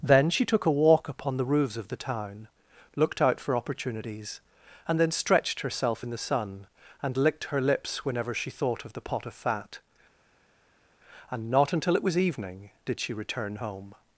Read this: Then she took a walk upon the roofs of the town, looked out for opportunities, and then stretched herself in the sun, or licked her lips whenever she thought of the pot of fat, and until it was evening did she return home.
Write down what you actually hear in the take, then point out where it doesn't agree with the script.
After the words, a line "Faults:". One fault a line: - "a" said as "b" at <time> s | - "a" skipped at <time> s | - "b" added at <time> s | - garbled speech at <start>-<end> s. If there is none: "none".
Then she took a walk upon the roofs of the town, looked out for opportunities, and then stretched herself in the sun, and licked her lips whenever she thought of the pot of fat, and not until it was evening did she return home.
Faults:
- "or" said as "and" at 7.0 s
- "not" added at 11.5 s